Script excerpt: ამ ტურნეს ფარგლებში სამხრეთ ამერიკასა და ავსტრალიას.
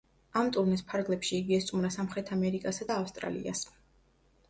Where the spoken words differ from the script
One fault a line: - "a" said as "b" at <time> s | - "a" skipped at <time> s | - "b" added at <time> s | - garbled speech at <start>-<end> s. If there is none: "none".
- "იგი ესტუმრა" added at 1.4 s